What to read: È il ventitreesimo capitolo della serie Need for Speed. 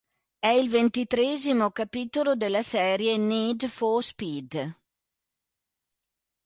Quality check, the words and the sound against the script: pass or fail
pass